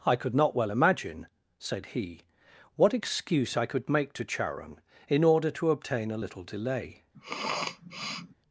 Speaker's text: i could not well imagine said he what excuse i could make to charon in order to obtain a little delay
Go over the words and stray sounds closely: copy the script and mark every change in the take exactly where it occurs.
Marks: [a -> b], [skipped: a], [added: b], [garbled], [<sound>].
i could not well imagine said he what excuse i could make to charon in order to obtain a little delay [sniff]